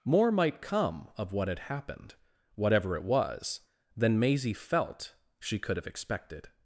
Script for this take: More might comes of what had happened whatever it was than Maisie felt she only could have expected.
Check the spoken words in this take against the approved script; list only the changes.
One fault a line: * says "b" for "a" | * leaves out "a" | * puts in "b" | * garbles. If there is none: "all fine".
* says "come" for "comes"
* leaves out "only"